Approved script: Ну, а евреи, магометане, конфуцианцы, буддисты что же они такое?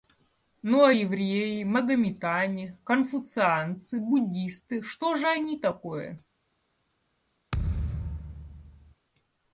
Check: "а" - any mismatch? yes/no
no